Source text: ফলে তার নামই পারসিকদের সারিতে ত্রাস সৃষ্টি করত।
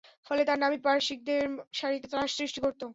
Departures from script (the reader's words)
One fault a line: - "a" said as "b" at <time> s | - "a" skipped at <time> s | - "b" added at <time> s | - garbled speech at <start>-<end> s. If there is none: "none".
none